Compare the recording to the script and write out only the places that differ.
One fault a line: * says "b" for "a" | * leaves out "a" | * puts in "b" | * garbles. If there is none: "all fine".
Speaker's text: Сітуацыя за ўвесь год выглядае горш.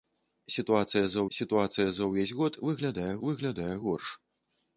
* puts in "сітуацыя за"
* puts in "выглядае"